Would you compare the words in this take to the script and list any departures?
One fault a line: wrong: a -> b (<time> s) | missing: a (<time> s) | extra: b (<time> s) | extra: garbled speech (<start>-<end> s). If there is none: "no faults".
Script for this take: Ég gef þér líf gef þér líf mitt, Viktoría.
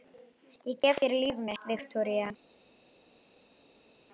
missing: gef þér líf (1.4 s)